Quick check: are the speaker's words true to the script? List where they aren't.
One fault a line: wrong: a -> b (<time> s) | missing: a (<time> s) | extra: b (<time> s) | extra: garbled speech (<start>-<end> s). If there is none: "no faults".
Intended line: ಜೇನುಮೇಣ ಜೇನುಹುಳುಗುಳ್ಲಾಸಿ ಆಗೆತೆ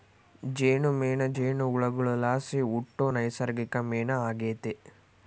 extra: ಹುಟ್ಟೋ ನೈಸರ್ಗಿಕ ಮೇಣ (2.7 s)